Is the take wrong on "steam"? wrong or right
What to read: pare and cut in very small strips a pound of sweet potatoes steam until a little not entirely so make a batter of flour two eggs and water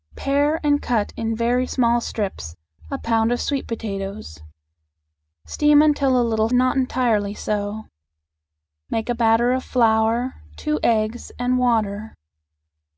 right